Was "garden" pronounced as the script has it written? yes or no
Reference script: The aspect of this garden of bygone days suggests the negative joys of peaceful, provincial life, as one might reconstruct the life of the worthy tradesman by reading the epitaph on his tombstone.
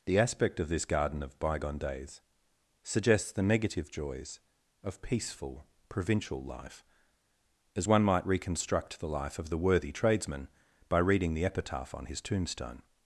yes